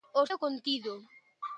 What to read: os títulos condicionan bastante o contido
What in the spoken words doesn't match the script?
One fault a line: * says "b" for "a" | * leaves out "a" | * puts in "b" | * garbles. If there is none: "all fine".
* leaves out "títulos condicionan bastante"